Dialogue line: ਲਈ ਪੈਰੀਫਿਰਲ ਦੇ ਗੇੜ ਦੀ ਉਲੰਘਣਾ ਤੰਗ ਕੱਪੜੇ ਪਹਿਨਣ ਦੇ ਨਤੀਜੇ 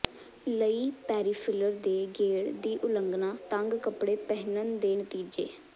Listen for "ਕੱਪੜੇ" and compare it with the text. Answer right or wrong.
right